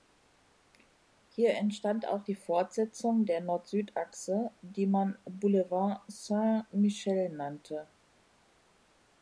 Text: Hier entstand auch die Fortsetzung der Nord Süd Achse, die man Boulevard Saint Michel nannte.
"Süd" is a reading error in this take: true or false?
false